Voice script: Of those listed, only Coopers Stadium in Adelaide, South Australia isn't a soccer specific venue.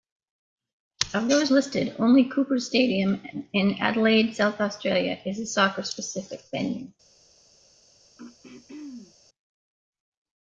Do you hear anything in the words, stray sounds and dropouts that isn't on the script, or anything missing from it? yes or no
yes